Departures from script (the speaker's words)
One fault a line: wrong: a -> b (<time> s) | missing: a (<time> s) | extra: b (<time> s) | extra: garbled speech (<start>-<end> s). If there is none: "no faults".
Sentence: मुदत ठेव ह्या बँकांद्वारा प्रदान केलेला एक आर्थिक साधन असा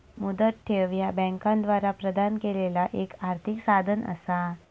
no faults